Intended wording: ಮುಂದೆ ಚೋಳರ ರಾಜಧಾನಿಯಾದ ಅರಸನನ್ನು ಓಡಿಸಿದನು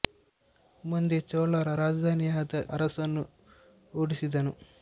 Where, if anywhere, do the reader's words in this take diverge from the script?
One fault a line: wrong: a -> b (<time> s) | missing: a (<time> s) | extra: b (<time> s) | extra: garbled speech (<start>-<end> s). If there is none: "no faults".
no faults